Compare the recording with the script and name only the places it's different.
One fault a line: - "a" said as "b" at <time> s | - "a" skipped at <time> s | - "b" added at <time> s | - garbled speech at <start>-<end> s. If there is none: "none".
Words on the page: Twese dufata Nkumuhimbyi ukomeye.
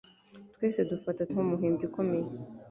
none